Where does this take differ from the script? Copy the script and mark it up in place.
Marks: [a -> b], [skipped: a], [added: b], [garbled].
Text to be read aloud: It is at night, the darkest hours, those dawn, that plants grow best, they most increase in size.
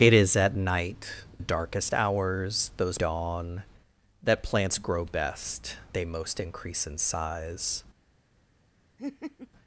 It is at night, the darkest hours, those dawn, that plants grow best, they most increase in size.